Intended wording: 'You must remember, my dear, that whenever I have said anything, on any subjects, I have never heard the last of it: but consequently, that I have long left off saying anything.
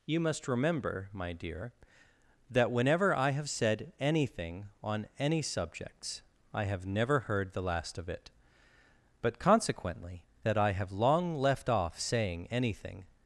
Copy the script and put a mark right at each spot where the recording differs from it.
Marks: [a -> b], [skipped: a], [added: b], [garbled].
'You must remember, my dear, that whenever I have said anything, on any subjects, I have never heard the last of it: but consequently, that I have long left off saying anything.